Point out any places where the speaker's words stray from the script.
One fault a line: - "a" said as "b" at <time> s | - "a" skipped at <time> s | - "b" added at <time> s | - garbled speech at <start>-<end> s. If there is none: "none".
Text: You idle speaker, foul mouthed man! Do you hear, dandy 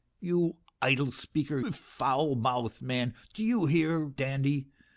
none